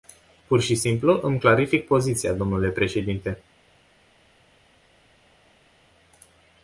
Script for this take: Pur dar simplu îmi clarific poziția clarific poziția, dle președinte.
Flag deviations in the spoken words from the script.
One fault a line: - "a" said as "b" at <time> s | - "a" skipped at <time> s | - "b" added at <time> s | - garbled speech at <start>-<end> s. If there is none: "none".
- "dar" said as "și" at 0.6 s
- "clarific poziția" skipped at 2.3 s